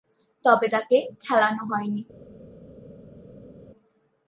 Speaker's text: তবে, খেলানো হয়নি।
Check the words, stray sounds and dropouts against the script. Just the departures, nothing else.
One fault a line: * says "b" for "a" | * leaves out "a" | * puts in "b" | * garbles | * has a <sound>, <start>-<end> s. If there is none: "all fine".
* puts in "তাকে"